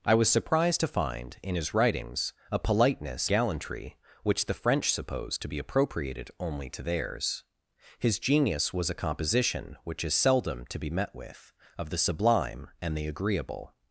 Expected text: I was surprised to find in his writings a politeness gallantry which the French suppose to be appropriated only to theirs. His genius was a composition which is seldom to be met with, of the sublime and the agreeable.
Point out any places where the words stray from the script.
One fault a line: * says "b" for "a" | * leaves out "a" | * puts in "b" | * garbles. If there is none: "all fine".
all fine